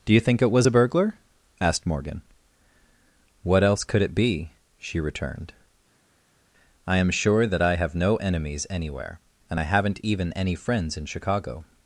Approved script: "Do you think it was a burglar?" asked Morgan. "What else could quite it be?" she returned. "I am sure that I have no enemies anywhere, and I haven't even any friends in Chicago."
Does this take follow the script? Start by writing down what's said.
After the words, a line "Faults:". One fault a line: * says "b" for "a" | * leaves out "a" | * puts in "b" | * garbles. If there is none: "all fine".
"Do you think it was a burglar?" asked Morgan. "What else could it be?" she returned. "I am sure that I have no enemies anywhere, and I haven't even any friends in Chicago."
Faults:
* leaves out "quite"